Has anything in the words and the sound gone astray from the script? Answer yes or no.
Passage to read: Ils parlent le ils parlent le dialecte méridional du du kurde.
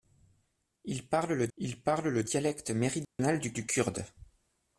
yes